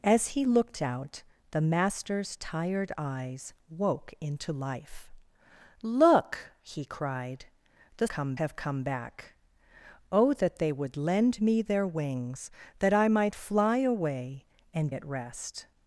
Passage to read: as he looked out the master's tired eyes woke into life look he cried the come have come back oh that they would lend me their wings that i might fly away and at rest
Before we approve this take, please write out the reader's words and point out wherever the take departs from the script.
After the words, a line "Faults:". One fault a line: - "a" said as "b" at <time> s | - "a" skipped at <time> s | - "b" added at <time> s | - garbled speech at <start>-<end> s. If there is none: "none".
as he looked out the master's tired eyes woke into life look he cried the come have come back oh that they would lend me their wings that i might fly away and at rest
Faults:
none